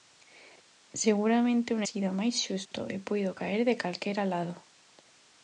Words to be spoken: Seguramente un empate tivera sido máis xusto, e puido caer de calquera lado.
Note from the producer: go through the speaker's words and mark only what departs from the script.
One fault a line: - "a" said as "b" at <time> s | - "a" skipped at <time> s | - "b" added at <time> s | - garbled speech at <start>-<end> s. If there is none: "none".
- "empate tivera" skipped at 1.8 s